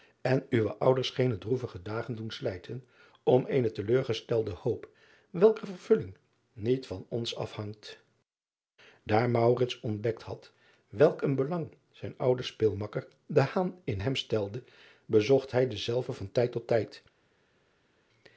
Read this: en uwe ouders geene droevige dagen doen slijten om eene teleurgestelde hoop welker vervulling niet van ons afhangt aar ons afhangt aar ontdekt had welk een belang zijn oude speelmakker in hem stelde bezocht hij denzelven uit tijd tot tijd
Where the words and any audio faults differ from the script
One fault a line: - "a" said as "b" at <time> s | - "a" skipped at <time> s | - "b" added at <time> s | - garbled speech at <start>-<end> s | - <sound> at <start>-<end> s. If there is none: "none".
- "ons afhangt aar" skipped at 9.3 s
- "uit" said as "van" at 16.1 s